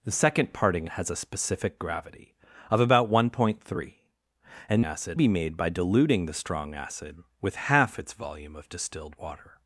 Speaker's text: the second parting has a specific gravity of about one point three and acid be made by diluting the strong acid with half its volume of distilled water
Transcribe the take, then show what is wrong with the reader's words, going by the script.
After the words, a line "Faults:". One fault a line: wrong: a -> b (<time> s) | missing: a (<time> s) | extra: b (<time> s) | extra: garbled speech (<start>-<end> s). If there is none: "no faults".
the second parting has a specific gravity of about one point three and acid be made by diluting the strong acid with half its volume of distilled water
Faults:
no faults